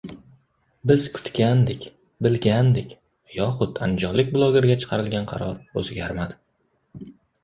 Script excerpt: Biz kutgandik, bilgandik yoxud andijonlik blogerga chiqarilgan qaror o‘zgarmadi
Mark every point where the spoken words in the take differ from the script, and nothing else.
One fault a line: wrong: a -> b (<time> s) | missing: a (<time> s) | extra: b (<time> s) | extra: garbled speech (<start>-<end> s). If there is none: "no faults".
no faults